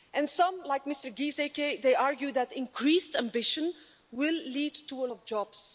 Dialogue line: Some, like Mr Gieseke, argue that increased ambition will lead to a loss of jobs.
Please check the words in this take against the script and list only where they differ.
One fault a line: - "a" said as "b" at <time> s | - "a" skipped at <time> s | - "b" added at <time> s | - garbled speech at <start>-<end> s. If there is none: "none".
- "loss" skipped at 5.1 s